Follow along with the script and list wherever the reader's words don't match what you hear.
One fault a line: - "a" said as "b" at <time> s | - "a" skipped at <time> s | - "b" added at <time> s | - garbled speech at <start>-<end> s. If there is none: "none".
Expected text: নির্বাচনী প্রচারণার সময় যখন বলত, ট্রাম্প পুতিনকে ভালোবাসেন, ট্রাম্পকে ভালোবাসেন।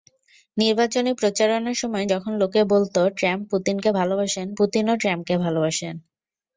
- "লোকে" added at 2.4 s
- "পুতিনও" added at 4.6 s